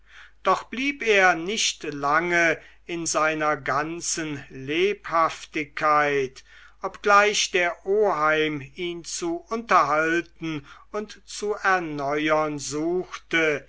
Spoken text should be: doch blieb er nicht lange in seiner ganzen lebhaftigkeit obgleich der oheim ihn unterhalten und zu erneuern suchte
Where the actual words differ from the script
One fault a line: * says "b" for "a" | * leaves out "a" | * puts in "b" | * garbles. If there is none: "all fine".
* puts in "zu"